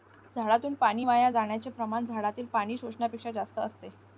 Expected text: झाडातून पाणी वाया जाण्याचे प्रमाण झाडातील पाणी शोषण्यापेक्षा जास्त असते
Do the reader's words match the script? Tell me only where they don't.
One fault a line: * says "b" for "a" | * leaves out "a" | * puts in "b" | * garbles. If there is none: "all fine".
all fine